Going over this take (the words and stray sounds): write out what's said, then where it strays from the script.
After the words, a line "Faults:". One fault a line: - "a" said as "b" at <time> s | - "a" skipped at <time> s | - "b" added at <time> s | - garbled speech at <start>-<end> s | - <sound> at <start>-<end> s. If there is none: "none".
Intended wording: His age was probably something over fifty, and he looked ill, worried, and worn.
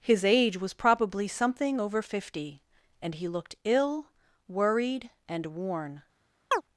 His age was probably something over fifty, and he looked ill, worried, and worn.
Faults:
- chirp at 6.5-6.6 s